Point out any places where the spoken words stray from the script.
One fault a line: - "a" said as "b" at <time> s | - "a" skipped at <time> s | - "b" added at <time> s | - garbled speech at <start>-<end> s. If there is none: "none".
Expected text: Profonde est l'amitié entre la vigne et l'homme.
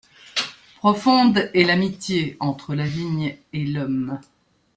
none